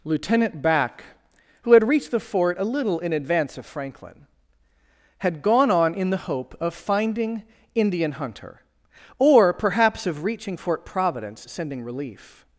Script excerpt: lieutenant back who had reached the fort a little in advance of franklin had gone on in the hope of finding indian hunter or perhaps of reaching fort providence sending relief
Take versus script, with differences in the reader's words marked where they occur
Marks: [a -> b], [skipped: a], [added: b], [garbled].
lieutenant back who had reached the fort a little in advance of franklin had gone on in the hope of finding indian hunter or perhaps of reaching fort providence sending relief